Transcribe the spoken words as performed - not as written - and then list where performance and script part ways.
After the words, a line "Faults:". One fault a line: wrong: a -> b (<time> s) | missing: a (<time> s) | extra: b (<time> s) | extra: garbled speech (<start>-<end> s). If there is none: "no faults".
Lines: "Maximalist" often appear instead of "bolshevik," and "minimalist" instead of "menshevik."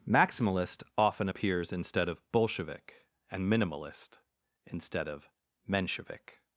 "Maximalist" often appears instead of "bolshevik," and "minimalist" instead of "menshevik."
Faults:
wrong: appear -> appears (1.3 s)